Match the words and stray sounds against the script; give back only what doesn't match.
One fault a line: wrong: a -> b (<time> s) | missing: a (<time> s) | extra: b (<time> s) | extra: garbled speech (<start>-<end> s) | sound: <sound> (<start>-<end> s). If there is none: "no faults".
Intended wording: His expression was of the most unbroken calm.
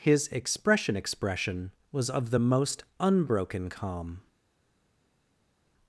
extra: expression (1.0 s)